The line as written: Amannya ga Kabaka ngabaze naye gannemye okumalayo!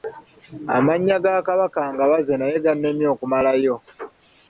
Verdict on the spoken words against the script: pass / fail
pass